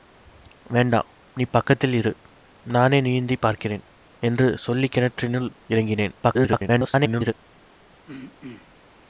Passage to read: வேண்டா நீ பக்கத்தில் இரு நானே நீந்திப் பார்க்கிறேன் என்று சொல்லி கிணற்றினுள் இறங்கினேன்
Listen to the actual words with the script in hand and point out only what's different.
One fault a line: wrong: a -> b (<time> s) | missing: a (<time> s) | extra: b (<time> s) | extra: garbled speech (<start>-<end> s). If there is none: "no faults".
extra: garbled speech (6.2-7.3 s)